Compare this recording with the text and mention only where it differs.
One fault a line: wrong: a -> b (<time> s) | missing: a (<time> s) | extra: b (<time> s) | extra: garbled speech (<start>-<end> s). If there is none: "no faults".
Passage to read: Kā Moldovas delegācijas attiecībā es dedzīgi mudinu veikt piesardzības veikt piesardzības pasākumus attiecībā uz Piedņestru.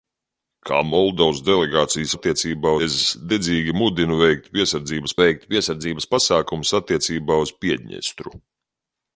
no faults